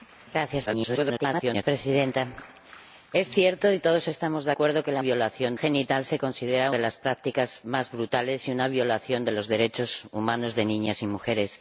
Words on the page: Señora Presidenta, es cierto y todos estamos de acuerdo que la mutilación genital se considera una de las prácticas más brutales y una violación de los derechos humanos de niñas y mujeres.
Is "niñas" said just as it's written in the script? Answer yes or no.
yes